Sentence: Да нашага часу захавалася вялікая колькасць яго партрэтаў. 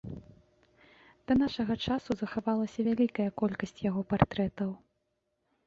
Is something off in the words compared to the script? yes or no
no